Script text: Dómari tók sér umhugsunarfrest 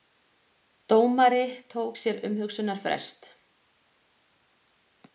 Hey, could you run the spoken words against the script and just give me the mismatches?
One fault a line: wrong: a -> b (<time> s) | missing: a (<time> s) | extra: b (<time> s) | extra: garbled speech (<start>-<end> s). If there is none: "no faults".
no faults